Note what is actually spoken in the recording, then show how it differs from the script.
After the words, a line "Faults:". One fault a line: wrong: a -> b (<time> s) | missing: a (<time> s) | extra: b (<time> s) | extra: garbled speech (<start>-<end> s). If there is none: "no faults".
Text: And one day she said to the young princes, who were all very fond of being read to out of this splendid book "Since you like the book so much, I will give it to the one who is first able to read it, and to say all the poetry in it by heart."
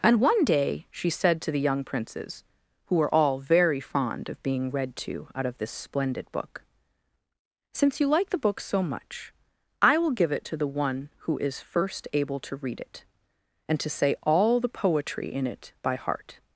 And one day she said to the young princes, who were all very fond of being read to out of this splendid book "Since you like the book so much, I will give it to the one who is first able to read it, and to say all the poetry in it by heart."
Faults:
no faults